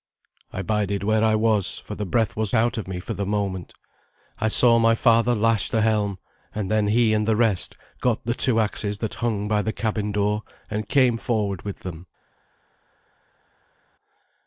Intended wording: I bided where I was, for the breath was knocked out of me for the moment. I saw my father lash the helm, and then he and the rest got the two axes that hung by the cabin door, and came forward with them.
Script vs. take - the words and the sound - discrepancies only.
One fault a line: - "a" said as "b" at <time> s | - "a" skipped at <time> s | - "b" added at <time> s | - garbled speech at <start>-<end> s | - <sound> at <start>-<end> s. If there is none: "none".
- "knocked" skipped at 2.5 s